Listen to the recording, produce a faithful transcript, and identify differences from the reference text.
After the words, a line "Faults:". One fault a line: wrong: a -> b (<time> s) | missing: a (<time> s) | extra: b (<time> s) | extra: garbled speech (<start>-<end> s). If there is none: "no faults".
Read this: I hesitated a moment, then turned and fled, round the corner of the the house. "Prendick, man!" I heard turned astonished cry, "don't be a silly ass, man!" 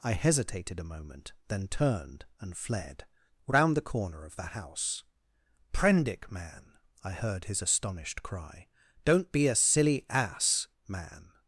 I hesitated a moment, then turned and fled, round the corner of the house. "Prendick, man!" I heard his astonished cry, "don't be a silly ass, man!"
Faults:
missing: the (4.5 s)
wrong: turned -> his (7.4 s)